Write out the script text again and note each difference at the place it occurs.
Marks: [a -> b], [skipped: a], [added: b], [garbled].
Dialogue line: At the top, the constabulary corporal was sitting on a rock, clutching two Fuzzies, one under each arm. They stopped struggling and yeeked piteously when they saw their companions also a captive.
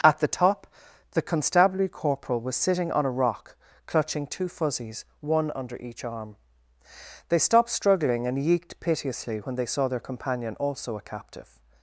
At the top, the constabulary corporal was sitting on a rock, clutching two Fuzzies, one under each arm. They stopped struggling and yeeked piteously when they saw their [companions -> companion] also a captive.